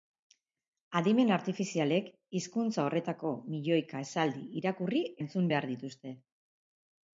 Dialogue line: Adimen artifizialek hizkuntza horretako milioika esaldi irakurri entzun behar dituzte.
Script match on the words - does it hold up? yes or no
yes